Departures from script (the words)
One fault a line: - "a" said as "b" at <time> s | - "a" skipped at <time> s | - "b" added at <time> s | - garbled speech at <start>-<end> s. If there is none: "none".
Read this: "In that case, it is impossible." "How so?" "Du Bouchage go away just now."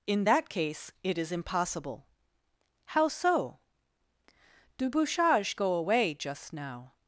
none